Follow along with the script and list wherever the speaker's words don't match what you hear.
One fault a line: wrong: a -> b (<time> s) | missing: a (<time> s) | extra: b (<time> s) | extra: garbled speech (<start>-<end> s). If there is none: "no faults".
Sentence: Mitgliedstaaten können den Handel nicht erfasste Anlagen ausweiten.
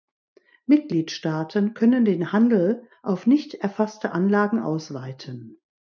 extra: auf (3.0 s)